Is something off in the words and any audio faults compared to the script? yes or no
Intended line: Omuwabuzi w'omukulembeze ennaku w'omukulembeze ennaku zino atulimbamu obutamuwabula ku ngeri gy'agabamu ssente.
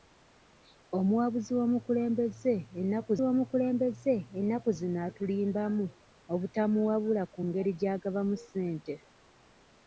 no